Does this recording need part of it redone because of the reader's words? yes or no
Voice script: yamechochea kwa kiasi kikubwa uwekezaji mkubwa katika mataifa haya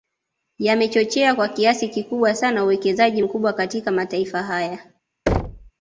yes